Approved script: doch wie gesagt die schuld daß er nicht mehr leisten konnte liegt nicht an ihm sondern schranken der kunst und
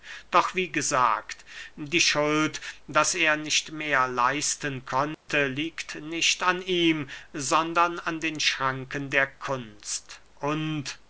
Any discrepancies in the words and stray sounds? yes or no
yes